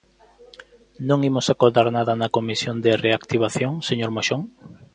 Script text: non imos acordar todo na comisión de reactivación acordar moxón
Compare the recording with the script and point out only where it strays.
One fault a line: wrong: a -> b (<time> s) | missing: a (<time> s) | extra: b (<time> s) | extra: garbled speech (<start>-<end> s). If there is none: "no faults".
wrong: todo -> nada (2.0 s)
wrong: acordar -> señor (3.9 s)